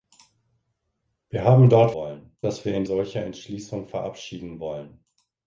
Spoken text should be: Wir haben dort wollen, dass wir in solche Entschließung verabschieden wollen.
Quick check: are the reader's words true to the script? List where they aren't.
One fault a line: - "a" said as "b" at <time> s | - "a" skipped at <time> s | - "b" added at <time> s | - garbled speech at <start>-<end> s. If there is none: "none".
none